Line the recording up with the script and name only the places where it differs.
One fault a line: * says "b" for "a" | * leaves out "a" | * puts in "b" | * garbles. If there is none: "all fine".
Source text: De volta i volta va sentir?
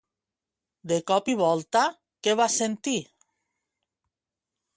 * says "cop" for "volta"
* puts in "què"